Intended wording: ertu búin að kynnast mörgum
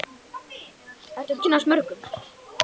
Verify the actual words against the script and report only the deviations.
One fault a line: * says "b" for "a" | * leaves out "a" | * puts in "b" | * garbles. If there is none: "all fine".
* leaves out "búin"